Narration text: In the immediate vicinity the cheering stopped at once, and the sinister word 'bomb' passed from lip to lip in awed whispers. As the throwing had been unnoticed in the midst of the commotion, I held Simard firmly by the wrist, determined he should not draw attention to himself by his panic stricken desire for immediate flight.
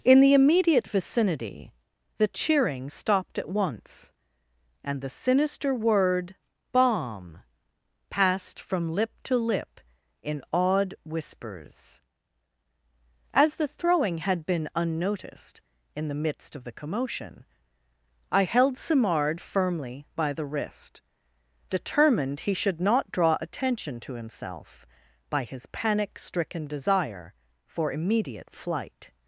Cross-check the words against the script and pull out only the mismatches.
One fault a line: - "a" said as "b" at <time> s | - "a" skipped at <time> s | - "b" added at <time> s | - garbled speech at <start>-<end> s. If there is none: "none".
none